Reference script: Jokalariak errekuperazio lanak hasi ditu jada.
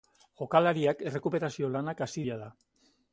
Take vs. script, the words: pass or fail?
fail